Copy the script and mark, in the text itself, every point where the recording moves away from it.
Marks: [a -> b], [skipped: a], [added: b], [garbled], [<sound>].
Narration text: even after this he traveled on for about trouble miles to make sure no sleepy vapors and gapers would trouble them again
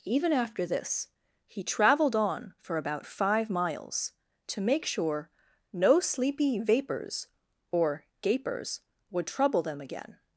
even after this he traveled on for about [trouble -> five] miles to make sure no sleepy vapors [and -> or] gapers would trouble them again